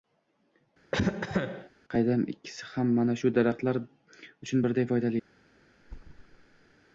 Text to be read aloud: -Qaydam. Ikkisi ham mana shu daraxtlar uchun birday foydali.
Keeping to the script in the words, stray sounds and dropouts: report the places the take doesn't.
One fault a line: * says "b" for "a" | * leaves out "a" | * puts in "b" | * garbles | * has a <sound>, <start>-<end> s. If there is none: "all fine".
* has a cough, 0.9-1.7 s
* has a thud, 5.8-6.7 s